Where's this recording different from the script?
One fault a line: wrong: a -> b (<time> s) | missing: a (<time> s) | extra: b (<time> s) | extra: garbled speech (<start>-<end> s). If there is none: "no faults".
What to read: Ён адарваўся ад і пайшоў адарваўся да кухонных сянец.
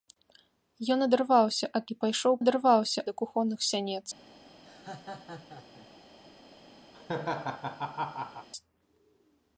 no faults